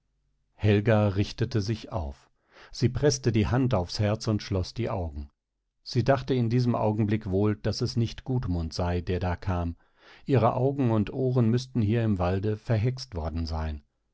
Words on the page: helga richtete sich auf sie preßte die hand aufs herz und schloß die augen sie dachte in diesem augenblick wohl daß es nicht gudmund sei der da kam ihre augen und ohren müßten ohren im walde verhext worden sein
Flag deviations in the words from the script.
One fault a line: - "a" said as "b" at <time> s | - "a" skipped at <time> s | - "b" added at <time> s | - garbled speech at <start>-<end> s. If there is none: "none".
- "ohren" said as "hier" at 11.8 s